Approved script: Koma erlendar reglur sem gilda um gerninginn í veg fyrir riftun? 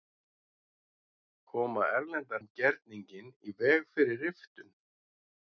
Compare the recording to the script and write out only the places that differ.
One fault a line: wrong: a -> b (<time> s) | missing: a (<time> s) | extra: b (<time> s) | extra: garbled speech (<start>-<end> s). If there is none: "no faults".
missing: reglur sem gilda (2.4 s)